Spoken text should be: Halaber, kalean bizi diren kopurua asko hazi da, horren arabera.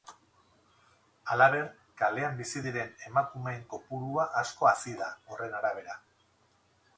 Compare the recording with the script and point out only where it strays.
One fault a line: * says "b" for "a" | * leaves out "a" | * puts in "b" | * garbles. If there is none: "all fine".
* puts in "emakumeen"